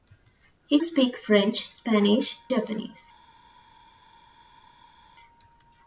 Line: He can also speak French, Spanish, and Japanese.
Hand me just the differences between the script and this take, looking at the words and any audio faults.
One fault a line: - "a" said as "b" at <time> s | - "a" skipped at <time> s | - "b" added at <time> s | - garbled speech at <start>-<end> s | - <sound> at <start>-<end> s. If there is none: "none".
- "can also" skipped at 0.8 s
- "and" skipped at 2.4 s